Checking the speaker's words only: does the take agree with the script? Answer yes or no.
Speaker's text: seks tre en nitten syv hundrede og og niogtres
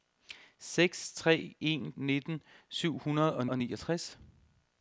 yes